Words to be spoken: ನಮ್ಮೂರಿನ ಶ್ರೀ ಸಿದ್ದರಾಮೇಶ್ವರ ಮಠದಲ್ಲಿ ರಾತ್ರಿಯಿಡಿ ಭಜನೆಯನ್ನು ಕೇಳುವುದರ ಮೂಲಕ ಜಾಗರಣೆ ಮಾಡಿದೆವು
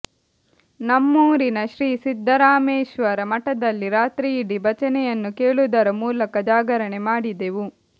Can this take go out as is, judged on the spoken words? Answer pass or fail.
pass